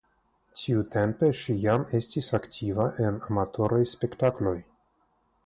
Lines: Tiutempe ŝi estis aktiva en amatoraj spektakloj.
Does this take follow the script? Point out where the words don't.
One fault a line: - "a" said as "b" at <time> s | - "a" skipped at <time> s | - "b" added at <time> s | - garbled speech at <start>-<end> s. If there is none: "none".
- "jam" added at 1.6 s